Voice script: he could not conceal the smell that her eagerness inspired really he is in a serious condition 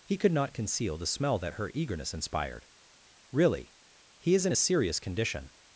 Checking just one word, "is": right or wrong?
right